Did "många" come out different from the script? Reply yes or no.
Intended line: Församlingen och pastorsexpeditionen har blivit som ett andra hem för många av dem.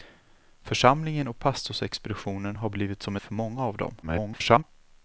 no